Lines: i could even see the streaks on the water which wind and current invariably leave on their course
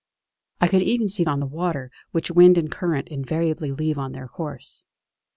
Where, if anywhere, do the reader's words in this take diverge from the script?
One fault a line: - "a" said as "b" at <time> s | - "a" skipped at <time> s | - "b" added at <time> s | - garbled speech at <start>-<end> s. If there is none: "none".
- "the streaks" skipped at 1.2 s